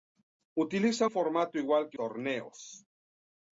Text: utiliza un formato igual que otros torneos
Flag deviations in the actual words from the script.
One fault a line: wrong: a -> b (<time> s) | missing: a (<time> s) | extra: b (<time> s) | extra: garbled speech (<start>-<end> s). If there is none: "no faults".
missing: un (1.1 s)
missing: otros (2.0 s)